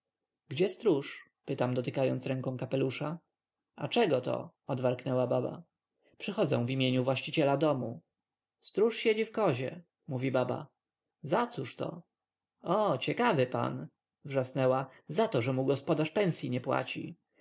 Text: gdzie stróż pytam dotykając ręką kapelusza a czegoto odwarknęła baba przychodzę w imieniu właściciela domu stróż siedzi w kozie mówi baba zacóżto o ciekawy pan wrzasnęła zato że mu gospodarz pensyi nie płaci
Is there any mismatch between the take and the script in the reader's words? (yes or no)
no